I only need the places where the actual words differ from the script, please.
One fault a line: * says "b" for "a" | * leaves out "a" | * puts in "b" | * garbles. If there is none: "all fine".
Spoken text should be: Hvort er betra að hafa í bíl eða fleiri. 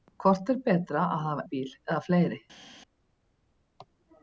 all fine